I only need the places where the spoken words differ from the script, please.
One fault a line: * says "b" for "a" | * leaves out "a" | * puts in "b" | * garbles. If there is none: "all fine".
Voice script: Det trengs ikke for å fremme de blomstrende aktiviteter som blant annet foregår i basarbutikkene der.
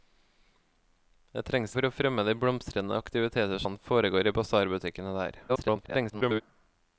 * leaves out "ikke"
* leaves out "som blant"
* garbles